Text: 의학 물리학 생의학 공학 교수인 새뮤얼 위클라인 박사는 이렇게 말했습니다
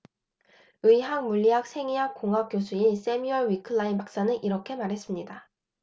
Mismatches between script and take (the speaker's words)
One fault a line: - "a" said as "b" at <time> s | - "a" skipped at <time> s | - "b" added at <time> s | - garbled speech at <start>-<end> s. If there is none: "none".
none